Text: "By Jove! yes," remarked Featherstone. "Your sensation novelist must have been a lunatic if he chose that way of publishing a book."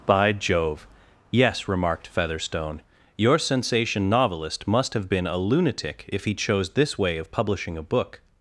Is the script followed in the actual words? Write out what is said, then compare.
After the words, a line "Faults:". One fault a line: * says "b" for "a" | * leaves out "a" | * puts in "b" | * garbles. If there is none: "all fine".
"By Jove! yes," remarked Featherstone. "Your sensation novelist must have been a lunatic if he chose this way of publishing a book."
Faults:
* says "this" for "that"